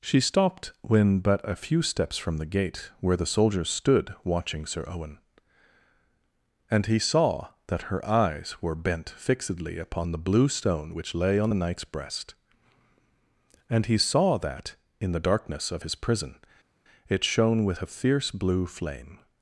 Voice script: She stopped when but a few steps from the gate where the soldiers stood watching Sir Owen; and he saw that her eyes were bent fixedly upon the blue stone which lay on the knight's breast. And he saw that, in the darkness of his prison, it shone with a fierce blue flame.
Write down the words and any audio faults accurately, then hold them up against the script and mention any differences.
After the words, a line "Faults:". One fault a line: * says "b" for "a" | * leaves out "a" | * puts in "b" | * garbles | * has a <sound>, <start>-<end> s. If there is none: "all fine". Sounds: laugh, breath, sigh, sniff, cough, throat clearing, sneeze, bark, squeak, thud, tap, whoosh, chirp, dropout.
She stopped when but a few steps from the gate where the soldiers stood watching Sir Owen; and he saw that her eyes were bent fixedly upon the blue stone which lay on the knight's breast. And he saw that, in the darkness of his prison, it shone with a fierce blue flame.
Faults:
all fine